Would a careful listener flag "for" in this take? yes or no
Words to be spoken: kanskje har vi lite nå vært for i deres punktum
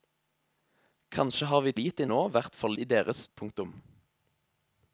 no